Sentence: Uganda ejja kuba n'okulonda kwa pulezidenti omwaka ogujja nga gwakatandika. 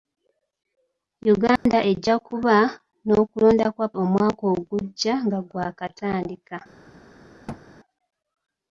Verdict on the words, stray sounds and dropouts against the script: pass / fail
fail